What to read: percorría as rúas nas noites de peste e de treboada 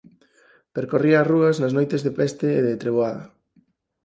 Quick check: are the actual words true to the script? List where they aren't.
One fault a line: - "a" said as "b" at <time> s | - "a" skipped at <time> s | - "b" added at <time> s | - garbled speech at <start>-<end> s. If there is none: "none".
none